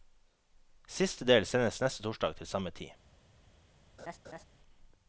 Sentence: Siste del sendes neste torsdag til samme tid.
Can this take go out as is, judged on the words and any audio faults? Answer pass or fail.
fail